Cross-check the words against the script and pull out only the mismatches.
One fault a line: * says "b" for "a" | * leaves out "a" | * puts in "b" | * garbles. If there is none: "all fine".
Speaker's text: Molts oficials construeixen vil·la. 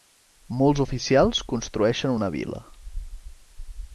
* puts in "una"